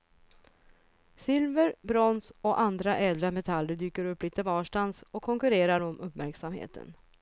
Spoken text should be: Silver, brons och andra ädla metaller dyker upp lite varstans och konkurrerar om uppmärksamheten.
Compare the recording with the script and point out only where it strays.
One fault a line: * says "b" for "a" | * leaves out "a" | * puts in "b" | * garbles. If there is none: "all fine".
all fine